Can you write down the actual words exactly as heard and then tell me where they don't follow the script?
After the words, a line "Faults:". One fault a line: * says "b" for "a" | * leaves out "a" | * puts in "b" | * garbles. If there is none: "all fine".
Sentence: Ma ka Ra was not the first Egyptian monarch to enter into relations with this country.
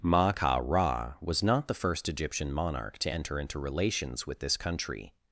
Ma ka Ra was not the first Egyptian monarch to enter into relations with this country.
Faults:
all fine